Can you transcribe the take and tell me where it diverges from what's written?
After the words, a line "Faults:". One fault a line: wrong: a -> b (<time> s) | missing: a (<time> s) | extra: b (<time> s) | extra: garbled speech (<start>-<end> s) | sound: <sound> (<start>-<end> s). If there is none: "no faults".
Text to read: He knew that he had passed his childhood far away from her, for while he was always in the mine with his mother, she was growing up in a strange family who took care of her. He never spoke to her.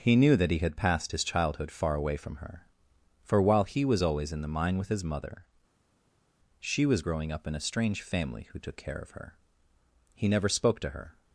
He knew that he had passed his childhood far away from her, for while he was always in the mine with his mother, she was growing up in a strange family who took care of her. He never spoke to her.
Faults:
no faults